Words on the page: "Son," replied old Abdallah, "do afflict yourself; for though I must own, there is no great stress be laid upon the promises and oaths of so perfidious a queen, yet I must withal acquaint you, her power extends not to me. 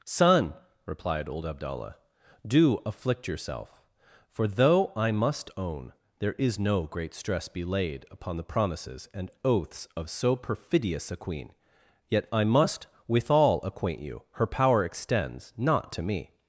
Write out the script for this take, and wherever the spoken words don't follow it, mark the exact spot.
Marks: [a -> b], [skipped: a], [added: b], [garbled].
"Son," replied old Abdallah, "do afflict yourself; for though I must own, there is no great stress be laid upon the promises and oaths of so perfidious a queen, yet I must withal acquaint you, her power extends not to me.